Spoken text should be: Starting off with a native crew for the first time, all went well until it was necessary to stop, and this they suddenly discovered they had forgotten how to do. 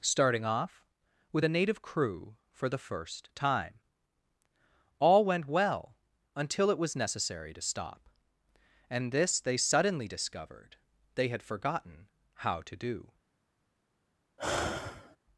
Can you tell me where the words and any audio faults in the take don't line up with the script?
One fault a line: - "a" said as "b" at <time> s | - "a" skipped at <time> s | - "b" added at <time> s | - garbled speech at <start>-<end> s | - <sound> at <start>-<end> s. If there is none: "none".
- sigh at 14.4-15.2 s